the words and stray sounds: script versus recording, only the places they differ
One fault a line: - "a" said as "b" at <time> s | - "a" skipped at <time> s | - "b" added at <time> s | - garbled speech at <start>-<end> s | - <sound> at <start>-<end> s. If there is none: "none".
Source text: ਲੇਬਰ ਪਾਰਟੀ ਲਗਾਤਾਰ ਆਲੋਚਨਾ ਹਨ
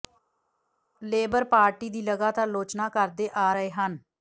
- "ਦੀ" added at 1.9 s
- "ਕਰਦੇ ਆ ਰਹੇ" added at 2.9 s